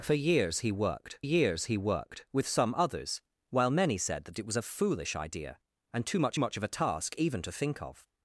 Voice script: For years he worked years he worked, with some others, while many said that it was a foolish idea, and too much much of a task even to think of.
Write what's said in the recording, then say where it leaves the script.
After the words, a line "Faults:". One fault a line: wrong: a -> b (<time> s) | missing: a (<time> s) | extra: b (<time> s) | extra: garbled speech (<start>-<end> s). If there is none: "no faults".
For years he worked years he worked, with some others, while many said that it was a foolish idea, and too much much of a task even to think of.
Faults:
no faults